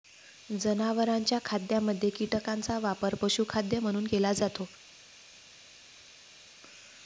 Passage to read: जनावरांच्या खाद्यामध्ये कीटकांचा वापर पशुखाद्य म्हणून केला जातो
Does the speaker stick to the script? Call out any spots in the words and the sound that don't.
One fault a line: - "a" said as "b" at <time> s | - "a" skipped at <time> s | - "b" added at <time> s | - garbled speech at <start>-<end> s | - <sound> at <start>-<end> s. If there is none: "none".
none